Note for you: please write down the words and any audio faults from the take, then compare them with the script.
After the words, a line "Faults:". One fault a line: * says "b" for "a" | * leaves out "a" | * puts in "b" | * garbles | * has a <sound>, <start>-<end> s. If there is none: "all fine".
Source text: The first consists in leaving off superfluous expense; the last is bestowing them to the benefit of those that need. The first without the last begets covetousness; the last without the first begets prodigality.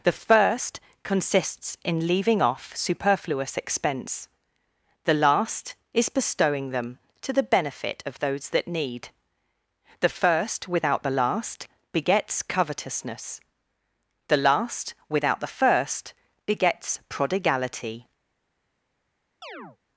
The first consists in leaving off superfluous expense; the last is bestowing them to the benefit of those that need. The first without the last begets covetousness; the last without the first begets prodigality.
Faults:
* has a chirp, 19.4-19.8 s